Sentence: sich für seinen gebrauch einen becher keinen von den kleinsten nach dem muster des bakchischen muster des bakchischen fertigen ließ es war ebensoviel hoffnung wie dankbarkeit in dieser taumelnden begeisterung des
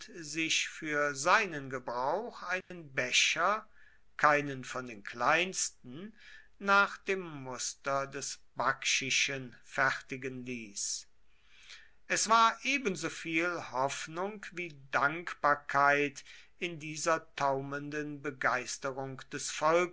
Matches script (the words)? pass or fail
fail